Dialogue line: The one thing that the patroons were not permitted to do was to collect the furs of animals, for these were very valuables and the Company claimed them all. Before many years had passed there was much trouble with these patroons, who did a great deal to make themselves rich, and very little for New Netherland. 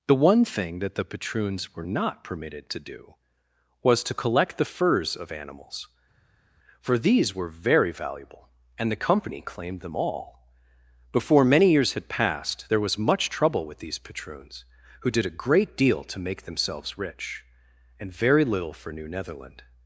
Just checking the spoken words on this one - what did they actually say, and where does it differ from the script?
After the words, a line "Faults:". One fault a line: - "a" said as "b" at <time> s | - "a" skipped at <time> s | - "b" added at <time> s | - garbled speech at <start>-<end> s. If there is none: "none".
The one thing that the patroons were not permitted to do was to collect the furs of animals, for these were very valuable and the Company claimed them all. Before many years had passed there was much trouble with these patroons, who did a great deal to make themselves rich, and very little for New Netherland.
Faults:
- "valuables" said as "valuable" at 7.9 s